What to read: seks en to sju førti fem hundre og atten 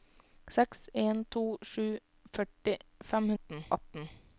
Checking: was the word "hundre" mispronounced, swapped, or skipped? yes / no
yes